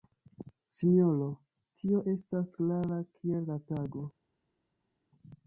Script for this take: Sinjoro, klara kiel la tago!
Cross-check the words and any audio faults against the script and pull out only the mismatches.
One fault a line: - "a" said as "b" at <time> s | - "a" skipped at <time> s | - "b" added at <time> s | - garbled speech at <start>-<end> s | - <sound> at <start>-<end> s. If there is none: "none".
- "tio estas" added at 1.8 s